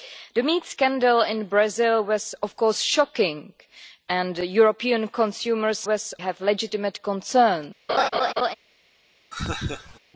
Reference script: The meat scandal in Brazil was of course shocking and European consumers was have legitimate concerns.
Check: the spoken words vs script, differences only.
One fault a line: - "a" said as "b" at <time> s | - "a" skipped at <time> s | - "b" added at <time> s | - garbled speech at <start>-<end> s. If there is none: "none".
none